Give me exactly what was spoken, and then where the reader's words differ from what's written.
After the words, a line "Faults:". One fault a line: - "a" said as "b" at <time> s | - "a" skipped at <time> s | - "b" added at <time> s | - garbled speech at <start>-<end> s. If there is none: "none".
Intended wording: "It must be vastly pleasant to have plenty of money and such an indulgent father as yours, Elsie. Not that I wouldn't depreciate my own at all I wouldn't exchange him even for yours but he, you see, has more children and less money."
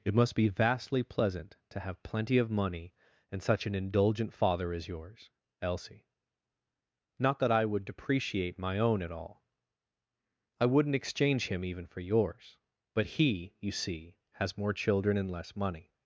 "It must be vastly pleasant to have plenty of money and such an indulgent father as yours, Elsie. Not that I would depreciate my own at all I wouldn't exchange him even for yours but he, you see, has more children and less money."
Faults:
- "wouldn't" said as "would" at 7.7 s